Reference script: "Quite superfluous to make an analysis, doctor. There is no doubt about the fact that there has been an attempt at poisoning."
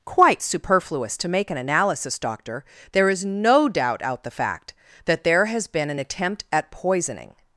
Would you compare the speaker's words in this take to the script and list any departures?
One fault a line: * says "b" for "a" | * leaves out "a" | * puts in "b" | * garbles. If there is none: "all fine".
* says "out" for "about"